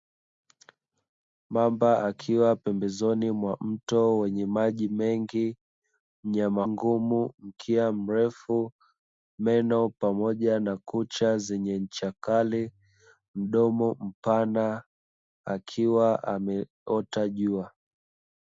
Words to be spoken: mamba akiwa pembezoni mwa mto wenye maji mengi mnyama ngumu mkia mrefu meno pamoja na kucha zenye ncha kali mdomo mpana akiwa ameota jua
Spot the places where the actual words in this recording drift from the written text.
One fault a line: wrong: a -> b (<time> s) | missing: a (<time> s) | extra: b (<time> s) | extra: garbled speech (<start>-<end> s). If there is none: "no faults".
no faults